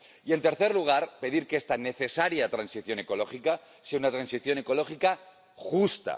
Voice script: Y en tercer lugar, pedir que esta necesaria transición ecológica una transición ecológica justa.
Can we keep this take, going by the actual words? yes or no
no